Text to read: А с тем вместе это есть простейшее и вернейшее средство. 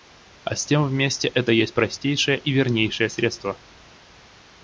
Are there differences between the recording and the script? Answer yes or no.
no